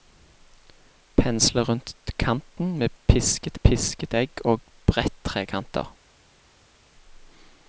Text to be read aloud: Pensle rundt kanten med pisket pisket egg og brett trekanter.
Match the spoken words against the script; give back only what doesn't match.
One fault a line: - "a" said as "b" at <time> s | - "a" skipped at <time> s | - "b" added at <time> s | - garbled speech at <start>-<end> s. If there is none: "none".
none